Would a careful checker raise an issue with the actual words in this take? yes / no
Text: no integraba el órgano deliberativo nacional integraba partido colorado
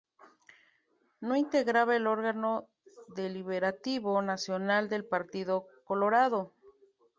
yes